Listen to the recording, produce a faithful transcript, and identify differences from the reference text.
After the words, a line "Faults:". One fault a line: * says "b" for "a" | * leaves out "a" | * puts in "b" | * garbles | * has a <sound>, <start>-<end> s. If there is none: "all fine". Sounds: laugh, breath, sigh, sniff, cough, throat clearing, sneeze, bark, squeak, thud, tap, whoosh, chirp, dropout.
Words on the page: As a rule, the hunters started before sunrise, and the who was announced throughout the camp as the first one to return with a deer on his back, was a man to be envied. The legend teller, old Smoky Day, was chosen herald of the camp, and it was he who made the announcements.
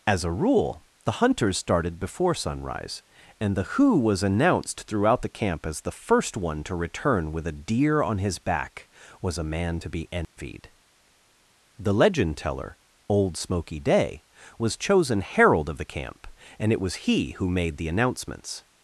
As a rule, the hunters started before sunrise, and the who was announced throughout the camp as the first one to return with a deer on his back, was a man to be envied. The legend teller, old Smoky Day, was chosen herald of the camp, and it was he who made the announcements.
Faults:
* has a dropout, 10.2-10.4 s